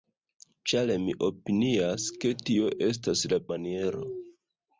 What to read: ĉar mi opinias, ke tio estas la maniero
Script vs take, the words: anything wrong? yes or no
no